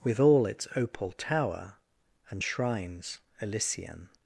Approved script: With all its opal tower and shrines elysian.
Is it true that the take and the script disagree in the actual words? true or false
false